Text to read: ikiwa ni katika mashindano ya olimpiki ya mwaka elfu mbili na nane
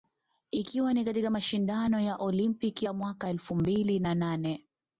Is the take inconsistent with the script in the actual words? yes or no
no